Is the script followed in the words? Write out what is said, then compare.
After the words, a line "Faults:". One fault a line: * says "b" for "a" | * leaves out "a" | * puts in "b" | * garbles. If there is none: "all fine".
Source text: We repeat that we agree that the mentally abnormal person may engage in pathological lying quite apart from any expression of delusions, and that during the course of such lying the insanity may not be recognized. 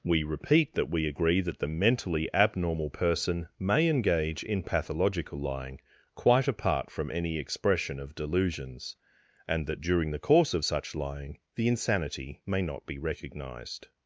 We repeat that we agree that the mentally abnormal person may engage in pathological lying quite apart from any expression of delusions, and that during the course of such lying the insanity may not be recognized.
Faults:
all fine